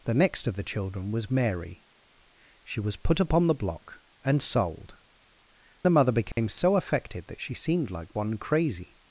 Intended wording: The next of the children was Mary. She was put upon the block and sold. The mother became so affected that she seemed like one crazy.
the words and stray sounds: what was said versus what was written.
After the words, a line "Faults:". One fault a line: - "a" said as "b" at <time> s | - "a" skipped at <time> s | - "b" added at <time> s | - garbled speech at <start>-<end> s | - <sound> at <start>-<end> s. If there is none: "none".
The next of the children was Mary. She was put upon the block and sold. The mother became so affected that she seemed like one crazy.
Faults:
- dropout at 6.3-6.4 s